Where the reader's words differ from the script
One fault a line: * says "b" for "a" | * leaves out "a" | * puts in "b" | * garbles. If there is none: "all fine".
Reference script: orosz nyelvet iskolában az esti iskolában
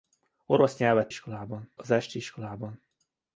all fine